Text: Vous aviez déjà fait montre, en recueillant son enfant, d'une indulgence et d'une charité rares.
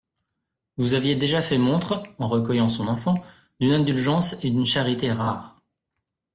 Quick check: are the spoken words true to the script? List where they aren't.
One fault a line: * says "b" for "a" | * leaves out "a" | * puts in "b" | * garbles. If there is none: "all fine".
all fine